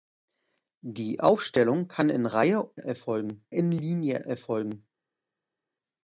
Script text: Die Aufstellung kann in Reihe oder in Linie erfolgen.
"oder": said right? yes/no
no